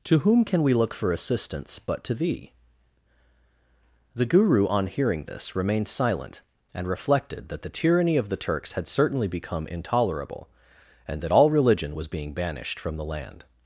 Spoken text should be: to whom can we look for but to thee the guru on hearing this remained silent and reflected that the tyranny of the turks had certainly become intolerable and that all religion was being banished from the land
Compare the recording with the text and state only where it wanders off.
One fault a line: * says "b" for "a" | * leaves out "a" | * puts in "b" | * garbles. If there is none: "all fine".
* puts in "assistance"